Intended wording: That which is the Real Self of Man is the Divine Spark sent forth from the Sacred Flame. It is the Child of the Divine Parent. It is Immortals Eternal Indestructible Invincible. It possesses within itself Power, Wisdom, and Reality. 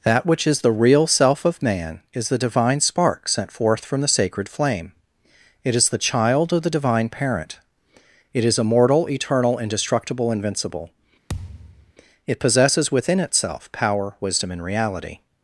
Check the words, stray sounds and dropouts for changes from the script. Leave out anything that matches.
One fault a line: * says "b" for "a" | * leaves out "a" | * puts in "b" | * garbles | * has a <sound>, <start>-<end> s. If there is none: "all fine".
* says "Immortal" for "Immortals"
* has a thud, 11.3-11.9 s